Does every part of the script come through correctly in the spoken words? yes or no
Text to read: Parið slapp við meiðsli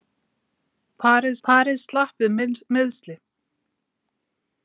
no